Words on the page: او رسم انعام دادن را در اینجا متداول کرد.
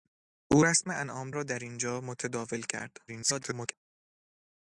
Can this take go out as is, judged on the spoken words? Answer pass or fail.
fail